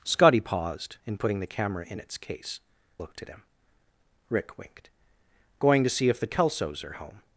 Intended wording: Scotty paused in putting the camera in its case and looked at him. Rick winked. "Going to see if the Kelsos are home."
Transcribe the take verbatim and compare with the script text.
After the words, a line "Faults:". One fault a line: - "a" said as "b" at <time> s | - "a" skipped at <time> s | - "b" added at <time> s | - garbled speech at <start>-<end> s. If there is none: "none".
Scotty paused in putting the camera in its case looked at him. Rick winked. "Going to see if the Kelsos are home."
Faults:
- "and" skipped at 2.6 s